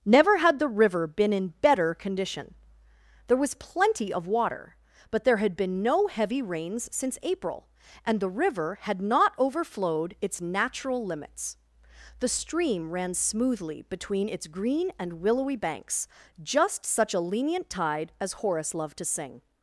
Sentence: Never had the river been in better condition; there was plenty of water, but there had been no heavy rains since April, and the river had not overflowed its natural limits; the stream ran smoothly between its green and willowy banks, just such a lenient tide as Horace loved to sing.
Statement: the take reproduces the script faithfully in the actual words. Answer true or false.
true